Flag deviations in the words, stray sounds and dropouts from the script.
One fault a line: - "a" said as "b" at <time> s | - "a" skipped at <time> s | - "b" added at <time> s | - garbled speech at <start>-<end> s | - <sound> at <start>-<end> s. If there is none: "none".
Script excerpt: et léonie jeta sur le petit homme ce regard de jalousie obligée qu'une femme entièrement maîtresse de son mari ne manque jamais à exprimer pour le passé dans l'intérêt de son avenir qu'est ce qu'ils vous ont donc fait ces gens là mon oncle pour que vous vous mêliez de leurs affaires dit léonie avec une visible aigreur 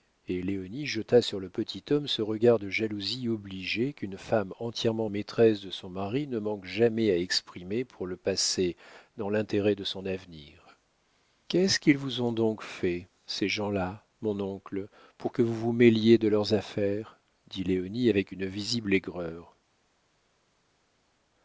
none